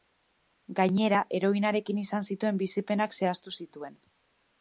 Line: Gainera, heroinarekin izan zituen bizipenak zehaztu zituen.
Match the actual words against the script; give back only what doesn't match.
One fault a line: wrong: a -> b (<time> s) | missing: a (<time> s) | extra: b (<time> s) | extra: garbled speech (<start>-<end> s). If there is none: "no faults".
no faults